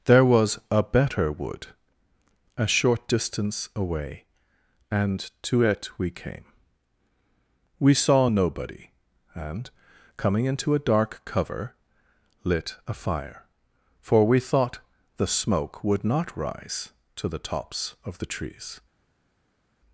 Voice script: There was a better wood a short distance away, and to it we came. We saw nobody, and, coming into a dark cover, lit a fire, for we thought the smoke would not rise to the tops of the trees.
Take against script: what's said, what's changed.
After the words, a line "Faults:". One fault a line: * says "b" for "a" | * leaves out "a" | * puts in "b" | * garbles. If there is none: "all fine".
There was a better wood a short distance away, and to it we came. We saw nobody, and, coming into a dark cover, lit a fire, for we thought the smoke would not rise to the tops of the trees.
Faults:
all fine